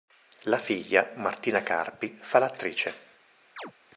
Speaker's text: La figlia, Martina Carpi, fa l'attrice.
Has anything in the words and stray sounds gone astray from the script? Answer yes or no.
yes